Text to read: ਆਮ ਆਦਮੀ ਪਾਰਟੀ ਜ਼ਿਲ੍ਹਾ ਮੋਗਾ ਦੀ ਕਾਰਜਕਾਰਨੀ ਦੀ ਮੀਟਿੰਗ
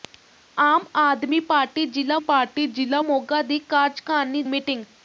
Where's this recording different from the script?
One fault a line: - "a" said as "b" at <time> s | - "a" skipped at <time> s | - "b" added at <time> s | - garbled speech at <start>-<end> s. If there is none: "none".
- "ਪਾਰਟੀ ਜ਼ਿਲ੍ਹਾ" added at 2.2 s
- "ਦੀ" skipped at 4.4 s